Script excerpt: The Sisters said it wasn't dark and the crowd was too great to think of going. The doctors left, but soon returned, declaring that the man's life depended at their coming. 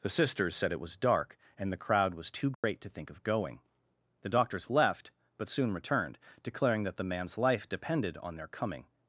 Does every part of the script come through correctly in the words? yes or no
no